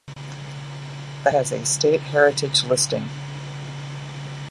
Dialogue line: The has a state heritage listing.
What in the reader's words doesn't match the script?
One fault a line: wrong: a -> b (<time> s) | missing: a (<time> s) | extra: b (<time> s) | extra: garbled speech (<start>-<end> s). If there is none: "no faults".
no faults